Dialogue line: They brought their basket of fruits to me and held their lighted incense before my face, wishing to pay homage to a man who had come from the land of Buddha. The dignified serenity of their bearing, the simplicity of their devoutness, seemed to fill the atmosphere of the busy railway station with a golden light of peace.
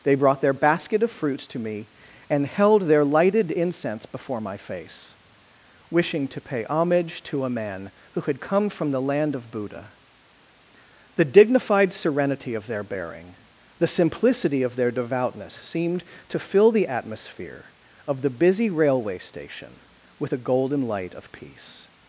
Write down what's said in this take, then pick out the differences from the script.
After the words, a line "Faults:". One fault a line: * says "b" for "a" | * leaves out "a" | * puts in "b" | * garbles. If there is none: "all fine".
They brought their basket of fruits to me and held their lighted incense before my face, wishing to pay homage to a man who had come from the land of Buddha. The dignified serenity of their bearing, the simplicity of their devoutness, seemed to fill the atmosphere of the busy railway station with a golden light of peace.
Faults:
all fine